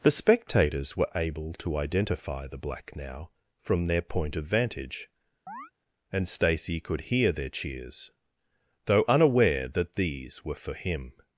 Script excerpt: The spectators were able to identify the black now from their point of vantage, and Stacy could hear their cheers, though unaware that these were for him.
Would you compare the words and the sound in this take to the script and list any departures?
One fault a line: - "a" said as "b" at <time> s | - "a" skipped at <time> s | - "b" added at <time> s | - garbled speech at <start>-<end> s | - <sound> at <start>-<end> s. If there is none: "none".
- chirp at 5.5-5.7 s